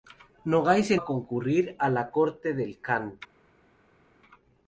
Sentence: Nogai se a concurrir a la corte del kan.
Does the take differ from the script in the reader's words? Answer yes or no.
no